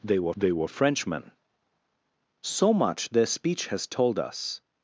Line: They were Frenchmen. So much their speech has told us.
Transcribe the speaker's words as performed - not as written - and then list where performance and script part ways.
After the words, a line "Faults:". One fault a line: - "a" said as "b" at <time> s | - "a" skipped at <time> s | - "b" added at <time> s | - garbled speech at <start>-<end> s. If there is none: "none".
They were they were Frenchmen. So much their speech has told us.
Faults:
- "they were" added at 0.4 s